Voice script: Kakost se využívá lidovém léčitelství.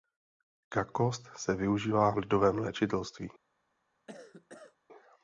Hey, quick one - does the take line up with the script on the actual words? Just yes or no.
yes